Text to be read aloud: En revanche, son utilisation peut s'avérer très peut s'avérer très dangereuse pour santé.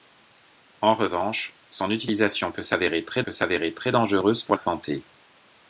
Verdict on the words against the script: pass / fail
pass